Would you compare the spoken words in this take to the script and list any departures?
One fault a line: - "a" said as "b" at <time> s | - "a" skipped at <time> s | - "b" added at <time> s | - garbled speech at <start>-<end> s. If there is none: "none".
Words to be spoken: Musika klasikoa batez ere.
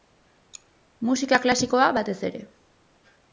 none